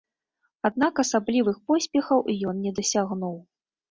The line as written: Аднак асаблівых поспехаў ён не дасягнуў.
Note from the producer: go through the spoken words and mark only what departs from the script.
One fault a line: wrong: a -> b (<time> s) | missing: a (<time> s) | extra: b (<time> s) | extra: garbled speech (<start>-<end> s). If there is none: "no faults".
no faults